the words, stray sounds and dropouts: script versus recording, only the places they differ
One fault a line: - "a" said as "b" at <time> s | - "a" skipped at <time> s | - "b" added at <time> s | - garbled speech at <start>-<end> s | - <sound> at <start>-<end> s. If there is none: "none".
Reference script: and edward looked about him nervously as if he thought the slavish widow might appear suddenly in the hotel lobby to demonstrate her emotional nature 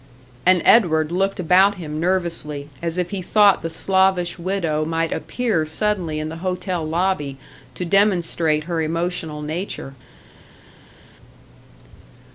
none